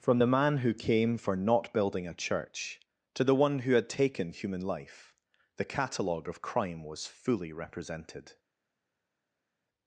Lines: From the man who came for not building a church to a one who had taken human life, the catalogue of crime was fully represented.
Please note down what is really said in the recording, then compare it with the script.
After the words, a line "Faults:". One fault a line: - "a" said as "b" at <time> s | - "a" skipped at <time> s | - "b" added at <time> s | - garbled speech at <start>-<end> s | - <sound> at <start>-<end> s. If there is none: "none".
From the man who came for not building a church to the one who had taken human life, the catalogue of crime was fully represented.
Faults:
- "a" said as "the" at 3.2 s